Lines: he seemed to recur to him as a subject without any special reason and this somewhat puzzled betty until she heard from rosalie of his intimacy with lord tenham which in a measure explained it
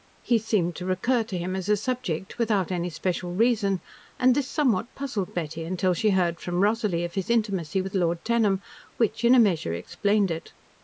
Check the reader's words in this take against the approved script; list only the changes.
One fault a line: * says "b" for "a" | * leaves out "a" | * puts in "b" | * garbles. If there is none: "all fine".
all fine